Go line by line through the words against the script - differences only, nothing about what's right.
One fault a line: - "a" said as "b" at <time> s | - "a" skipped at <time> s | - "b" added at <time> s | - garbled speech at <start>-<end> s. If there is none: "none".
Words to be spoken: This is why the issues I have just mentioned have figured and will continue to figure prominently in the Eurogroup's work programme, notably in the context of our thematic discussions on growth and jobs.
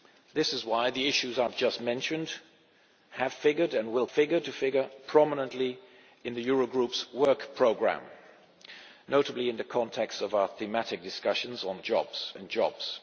- "continue" said as "figured" at 4.1 s
- "growth" said as "jobs" at 11.8 s